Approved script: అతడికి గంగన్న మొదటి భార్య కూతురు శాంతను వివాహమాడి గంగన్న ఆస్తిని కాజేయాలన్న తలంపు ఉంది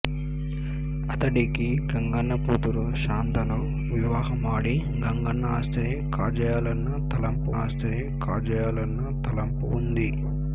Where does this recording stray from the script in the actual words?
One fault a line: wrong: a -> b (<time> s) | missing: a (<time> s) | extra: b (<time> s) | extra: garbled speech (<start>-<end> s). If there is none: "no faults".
missing: మొదటి భార్య (2.3 s)
extra: ఆస్తిని కాజేయాలన్న తలంపు (7.5 s)